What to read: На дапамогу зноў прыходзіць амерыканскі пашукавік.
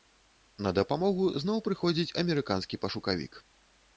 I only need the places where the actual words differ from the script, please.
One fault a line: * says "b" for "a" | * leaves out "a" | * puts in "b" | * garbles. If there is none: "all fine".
all fine